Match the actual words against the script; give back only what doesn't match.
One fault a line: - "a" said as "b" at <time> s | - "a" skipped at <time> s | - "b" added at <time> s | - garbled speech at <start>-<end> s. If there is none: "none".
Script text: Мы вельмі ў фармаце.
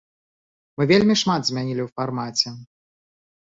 - "шмат змянілі" added at 1.2 s